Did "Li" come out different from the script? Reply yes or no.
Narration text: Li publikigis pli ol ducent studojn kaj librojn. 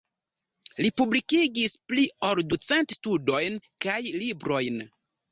no